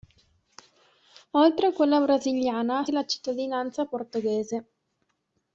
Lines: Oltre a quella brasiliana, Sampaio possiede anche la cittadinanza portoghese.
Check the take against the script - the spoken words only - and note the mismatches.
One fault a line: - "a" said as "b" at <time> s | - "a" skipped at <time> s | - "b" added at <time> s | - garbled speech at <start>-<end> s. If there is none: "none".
- "Sampaio possiede anche" skipped at 2.9 s